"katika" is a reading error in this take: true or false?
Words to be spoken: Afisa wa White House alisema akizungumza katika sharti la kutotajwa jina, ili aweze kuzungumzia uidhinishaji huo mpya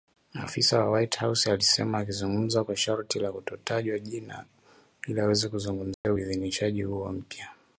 true